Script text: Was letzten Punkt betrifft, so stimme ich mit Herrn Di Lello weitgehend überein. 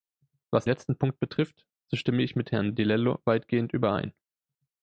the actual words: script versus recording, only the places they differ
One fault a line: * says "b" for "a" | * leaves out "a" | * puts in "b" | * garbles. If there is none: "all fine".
all fine